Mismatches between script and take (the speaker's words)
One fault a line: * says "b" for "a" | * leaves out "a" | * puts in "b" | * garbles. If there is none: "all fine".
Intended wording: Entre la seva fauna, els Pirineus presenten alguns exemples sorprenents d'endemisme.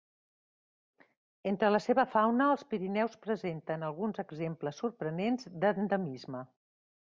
all fine